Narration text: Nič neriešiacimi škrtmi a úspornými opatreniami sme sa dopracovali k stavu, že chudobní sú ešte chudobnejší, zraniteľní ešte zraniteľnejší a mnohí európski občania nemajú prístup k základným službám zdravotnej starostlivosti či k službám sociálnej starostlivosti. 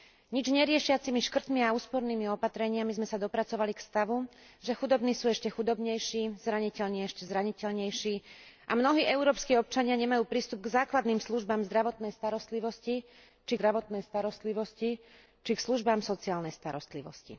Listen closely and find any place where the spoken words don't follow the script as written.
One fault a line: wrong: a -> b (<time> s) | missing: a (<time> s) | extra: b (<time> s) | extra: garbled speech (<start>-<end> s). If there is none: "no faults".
extra: zdravotnej starostlivosti či (13.5 s)